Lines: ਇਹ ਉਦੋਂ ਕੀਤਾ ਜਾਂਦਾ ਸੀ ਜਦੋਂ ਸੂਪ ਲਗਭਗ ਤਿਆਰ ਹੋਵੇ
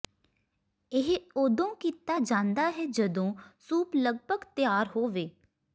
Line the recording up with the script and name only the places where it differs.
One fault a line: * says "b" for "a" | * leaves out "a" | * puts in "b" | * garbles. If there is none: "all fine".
* says "ਹੈ" for "ਸੀ"